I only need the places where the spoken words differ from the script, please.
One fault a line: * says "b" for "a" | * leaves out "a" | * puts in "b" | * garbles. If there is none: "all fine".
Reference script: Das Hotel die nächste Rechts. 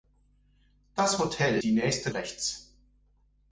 all fine